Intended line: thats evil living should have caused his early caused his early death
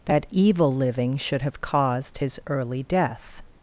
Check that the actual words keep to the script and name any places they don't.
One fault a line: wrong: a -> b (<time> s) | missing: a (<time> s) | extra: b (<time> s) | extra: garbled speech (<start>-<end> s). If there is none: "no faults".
wrong: thats -> that (0.1 s)
missing: caused his early (2.8 s)